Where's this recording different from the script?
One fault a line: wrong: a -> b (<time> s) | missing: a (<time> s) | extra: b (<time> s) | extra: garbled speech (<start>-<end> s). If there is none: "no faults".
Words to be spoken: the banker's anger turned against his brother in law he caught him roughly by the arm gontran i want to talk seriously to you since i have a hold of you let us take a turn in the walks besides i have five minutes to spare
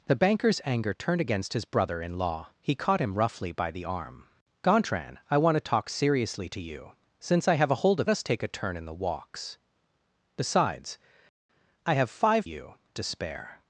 missing: you let (8.1 s)
wrong: minutes -> you (12.4 s)